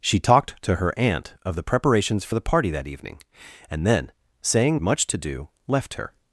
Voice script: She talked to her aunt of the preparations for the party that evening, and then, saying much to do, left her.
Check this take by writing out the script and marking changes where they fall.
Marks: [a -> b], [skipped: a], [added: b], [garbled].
She talked to her aunt of the preparations for the party that evening, and then, saying much to do, left her.